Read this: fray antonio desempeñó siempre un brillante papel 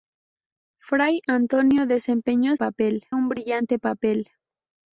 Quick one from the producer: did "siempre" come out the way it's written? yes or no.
no